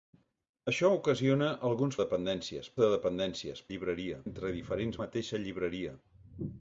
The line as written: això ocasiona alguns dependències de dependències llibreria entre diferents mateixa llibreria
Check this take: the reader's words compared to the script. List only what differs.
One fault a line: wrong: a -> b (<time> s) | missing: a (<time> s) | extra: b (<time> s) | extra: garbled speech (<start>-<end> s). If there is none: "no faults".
no faults